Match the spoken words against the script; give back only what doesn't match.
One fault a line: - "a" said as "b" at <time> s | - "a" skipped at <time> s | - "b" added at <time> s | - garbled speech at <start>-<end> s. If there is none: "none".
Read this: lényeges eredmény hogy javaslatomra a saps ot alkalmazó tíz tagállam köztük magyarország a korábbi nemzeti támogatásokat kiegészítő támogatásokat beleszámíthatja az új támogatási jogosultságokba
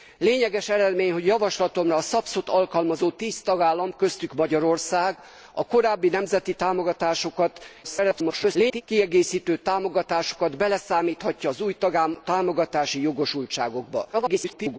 - garbled speech at 7.8-8.8 s
- garbled speech at 14.1-14.8 s